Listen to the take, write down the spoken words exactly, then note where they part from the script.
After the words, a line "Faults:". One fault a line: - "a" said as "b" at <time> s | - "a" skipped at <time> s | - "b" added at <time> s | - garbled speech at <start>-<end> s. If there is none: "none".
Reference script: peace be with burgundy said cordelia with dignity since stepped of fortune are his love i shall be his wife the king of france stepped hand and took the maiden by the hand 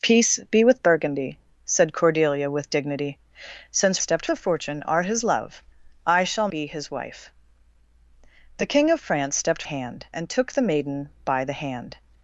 peace be with burgundy said cordelia with dignity since stepped of fortune are his love i shall be his wife the king of france stepped hand and took the maiden by the hand
Faults:
none